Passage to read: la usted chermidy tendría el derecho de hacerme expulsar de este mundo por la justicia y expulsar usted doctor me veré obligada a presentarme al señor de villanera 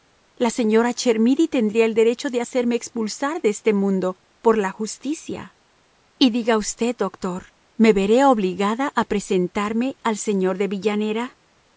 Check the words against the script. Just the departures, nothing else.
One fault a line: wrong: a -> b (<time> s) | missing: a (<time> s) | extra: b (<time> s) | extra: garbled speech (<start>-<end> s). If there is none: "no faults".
wrong: usted -> señora (0.5 s)
wrong: expulsar -> diga (6.3 s)